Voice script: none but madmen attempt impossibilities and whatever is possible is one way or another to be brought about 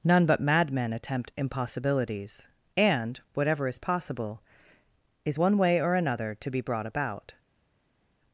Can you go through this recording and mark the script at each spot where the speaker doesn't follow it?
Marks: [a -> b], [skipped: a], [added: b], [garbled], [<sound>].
none but madmen attempt impossibilities and whatever is possible is one way or another to be brought about